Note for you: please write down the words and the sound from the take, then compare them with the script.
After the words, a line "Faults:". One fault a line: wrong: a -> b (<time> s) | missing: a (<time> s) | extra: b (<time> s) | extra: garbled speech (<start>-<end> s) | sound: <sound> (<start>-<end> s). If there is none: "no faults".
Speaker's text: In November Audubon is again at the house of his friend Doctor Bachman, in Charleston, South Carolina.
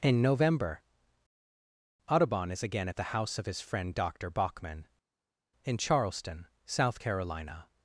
In November Audubon is again at the house of his friend Doctor Bachman, in Charleston, South Carolina.
Faults:
no faults